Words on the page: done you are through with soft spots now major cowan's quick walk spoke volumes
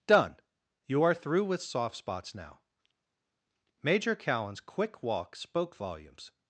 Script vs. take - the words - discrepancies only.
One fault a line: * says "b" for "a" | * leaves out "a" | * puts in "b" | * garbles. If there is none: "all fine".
all fine